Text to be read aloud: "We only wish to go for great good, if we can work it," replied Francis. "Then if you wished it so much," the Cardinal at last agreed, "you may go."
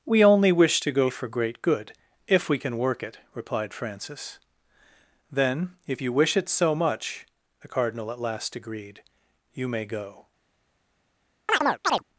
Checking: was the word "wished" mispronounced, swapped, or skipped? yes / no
yes